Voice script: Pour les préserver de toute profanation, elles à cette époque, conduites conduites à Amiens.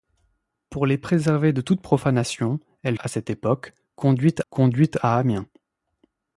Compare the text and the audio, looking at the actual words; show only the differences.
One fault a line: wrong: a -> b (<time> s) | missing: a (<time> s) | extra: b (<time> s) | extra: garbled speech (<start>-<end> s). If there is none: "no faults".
no faults